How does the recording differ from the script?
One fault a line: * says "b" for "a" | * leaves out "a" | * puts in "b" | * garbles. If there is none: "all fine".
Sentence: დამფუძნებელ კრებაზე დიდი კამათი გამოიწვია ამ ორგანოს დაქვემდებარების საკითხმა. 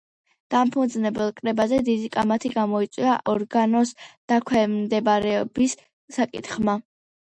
* leaves out "ამ"